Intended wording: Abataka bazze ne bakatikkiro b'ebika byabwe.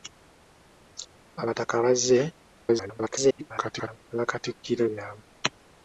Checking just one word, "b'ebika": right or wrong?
wrong